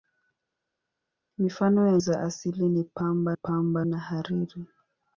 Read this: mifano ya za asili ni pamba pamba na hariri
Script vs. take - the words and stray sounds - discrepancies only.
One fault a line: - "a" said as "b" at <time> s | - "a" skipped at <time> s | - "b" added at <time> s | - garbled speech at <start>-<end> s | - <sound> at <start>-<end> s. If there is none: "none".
none